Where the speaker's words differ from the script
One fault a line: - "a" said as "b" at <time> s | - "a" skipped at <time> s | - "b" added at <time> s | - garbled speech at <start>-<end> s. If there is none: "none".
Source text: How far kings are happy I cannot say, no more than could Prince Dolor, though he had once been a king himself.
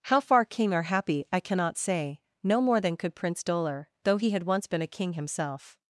- "kings" said as "king" at 0.5 s